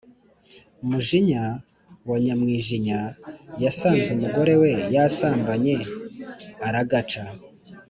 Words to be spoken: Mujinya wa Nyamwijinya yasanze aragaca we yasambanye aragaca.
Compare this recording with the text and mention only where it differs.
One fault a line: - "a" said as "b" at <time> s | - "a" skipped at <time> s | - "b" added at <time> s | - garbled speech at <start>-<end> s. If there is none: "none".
- "aragaca" said as "umugore" at 4.2 s